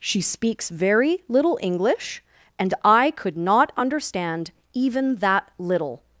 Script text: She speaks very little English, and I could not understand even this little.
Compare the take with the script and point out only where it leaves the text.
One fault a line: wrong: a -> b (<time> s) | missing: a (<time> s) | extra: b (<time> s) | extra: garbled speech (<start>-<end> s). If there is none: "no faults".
wrong: this -> that (5.2 s)